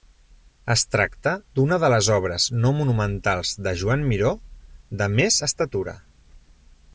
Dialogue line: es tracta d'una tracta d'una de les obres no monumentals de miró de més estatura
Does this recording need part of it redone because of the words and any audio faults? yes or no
yes